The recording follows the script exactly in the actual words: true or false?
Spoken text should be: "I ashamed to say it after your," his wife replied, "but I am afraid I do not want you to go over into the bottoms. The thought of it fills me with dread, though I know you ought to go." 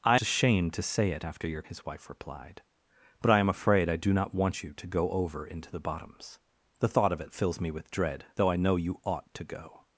true